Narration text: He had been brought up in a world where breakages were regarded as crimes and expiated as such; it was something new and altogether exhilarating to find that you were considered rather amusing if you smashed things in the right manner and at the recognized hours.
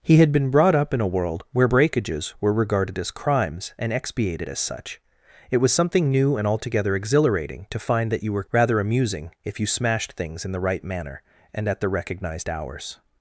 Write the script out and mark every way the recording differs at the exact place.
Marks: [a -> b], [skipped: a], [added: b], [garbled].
He had been brought up in a world where breakages were regarded as crimes and expiated as such; it was something new and altogether exhilarating to find that you were [skipped: considered] rather amusing if you smashed things in the right manner and at the recognized hours.